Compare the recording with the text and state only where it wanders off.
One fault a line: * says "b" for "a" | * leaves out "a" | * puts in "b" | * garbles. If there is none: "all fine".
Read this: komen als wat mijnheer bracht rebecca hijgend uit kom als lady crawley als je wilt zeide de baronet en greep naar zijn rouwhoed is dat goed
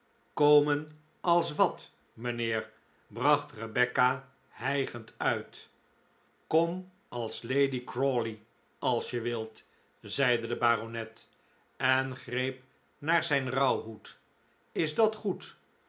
all fine